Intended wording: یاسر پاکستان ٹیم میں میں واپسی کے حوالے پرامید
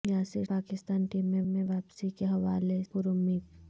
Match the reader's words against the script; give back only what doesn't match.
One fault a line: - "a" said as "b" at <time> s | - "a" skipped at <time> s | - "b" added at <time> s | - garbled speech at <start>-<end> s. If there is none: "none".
none